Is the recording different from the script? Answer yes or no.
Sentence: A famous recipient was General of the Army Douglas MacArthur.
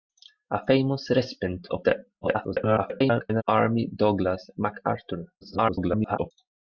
yes